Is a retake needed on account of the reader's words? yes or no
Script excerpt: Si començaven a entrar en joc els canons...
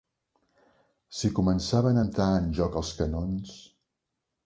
no